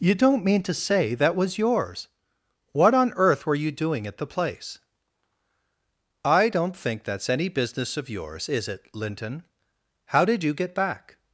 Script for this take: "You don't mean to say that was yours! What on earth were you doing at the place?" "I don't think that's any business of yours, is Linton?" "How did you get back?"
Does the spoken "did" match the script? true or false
true